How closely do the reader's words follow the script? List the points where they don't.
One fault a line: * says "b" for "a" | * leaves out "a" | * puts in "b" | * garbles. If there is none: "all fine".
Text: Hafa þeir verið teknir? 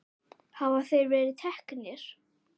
all fine